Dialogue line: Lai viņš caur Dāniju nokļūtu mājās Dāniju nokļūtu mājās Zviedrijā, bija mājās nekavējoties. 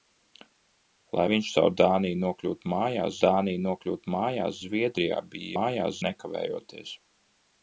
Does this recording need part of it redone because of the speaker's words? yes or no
no